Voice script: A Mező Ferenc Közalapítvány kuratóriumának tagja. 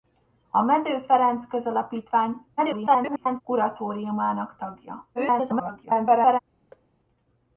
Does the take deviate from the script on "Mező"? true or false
false